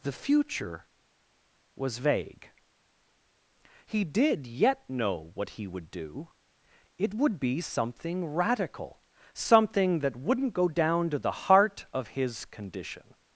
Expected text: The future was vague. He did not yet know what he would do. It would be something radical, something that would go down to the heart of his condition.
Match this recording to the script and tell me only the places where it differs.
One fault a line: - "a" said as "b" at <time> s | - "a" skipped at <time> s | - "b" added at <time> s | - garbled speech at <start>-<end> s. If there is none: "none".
- "not" skipped at 4.5 s
- "would" said as "wouldn't" at 10.2 s